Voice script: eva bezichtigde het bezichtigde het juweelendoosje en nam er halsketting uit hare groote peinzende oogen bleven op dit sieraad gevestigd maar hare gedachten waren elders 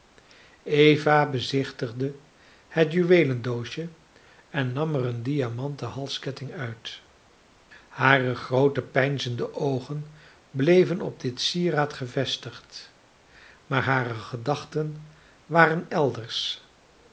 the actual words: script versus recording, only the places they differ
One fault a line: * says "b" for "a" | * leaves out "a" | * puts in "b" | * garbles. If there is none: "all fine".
* leaves out "bezichtigde het"
* puts in "een diamanten"